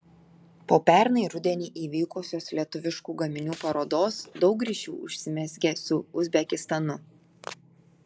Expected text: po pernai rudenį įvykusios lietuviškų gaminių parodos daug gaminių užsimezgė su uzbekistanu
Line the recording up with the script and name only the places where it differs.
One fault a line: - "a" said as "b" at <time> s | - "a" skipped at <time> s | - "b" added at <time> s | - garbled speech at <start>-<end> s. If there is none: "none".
- "gaminių" said as "ryšių" at 4.7 s